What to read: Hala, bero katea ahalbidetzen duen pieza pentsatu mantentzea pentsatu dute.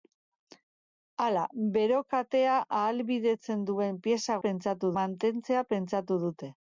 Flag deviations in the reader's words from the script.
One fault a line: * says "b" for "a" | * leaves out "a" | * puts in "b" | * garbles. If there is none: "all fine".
all fine